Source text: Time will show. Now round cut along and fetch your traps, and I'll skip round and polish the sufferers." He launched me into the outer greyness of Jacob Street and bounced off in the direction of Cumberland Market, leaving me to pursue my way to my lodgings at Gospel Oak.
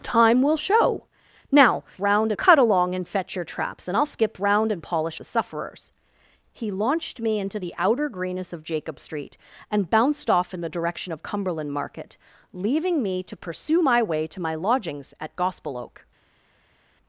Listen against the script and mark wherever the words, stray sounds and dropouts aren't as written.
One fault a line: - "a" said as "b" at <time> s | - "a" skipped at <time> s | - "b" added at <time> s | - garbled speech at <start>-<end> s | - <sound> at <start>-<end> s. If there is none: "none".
none